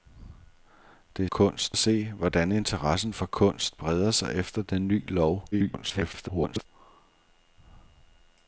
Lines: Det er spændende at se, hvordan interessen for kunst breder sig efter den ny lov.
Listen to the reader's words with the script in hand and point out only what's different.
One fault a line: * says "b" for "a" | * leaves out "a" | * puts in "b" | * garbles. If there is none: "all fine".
* says "kunst" for "spændende"
* garbles